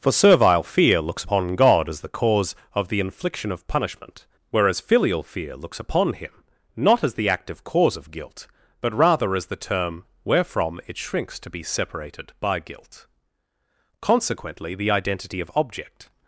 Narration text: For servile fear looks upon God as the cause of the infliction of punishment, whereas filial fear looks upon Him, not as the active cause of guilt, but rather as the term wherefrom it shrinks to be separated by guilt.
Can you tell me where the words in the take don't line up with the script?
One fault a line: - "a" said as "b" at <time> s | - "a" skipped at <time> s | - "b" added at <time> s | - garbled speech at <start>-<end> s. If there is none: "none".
- "Consequently the identity of object" added at 14.0 s